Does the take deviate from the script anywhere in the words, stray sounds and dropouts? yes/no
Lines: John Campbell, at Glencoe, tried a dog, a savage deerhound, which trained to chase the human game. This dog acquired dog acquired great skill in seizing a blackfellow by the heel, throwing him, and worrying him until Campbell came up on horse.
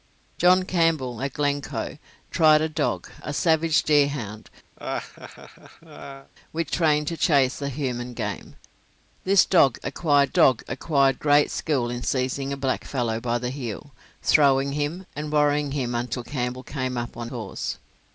yes